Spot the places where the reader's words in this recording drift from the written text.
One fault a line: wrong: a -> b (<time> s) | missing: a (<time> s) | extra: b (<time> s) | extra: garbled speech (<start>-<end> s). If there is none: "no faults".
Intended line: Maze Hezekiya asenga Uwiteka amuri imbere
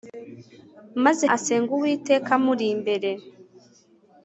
missing: Hezekiya (1.2 s)